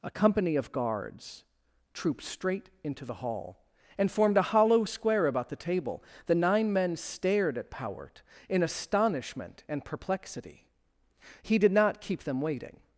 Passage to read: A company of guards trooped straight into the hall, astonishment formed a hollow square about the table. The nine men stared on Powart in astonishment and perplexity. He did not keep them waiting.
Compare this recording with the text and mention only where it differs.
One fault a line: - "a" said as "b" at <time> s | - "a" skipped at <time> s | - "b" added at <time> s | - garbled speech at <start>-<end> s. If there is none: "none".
- "astonishment" said as "and" at 4.0 s
- "on" said as "at" at 7.6 s